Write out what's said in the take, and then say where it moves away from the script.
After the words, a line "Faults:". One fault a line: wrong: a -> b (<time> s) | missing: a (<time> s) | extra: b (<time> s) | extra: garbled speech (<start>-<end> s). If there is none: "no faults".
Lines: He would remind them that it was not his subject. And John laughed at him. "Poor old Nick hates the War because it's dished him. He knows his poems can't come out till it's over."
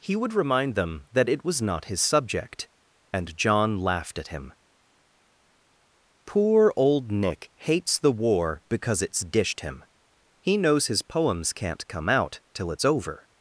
He would remind them that it was not his subject. And John laughed at him. "Poor old Nick hates the War because it's dished him. He knows his poems can't come out till it's over."
Faults:
no faults